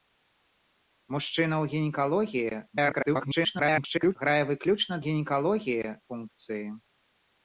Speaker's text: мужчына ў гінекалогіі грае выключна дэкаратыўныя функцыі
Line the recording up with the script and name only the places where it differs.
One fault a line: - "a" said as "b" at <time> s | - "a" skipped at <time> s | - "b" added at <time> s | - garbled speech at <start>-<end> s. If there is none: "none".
- garbled speech at 2.7-4.2 s
- "дэкаратыўныя" said as "гінекалогіі" at 5.1 s